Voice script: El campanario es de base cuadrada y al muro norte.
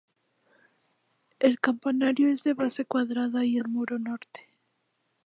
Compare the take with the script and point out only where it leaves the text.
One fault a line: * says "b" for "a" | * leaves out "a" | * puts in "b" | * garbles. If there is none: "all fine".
all fine